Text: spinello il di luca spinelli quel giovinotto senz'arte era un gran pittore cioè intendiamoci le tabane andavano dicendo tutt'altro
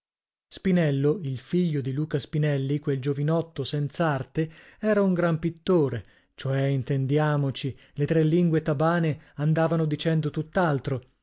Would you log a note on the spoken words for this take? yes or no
yes